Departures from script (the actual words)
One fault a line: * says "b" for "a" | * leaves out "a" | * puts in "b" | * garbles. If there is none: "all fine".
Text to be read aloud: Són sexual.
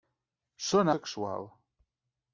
all fine